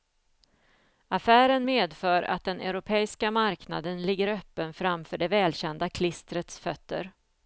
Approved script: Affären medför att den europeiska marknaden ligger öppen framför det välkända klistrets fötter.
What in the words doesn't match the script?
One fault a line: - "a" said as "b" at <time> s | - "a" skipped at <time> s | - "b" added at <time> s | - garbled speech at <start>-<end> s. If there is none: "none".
none